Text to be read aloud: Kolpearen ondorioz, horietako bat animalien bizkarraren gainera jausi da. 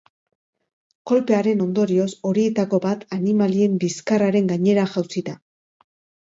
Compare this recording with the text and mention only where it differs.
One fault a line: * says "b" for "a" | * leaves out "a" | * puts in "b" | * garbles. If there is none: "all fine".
all fine